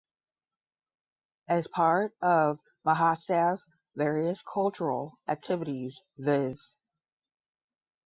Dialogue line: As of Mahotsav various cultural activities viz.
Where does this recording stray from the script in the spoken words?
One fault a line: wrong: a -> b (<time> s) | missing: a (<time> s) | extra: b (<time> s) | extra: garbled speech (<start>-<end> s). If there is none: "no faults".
extra: part (1.7 s)